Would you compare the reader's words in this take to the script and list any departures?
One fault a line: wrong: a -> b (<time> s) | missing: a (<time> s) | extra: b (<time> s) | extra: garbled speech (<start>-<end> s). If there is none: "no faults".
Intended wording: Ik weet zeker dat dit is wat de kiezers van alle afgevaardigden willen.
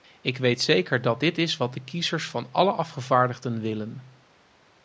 no faults